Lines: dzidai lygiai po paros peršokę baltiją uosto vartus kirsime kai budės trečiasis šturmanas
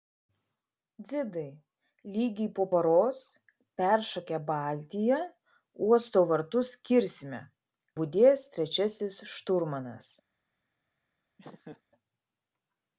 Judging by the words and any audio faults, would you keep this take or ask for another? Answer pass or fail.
fail